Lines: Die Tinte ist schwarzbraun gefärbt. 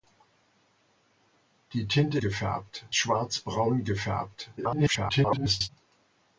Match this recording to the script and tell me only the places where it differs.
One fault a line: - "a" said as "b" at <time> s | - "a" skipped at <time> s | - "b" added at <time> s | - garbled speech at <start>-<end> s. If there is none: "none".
- "ist" said as "gefärbt" at 2.2 s
- garbled speech at 4.6-5.7 s